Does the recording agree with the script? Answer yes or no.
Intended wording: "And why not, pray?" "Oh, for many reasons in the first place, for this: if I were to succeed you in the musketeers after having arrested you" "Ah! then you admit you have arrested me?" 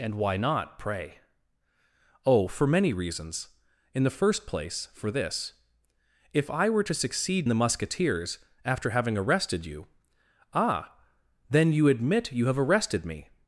no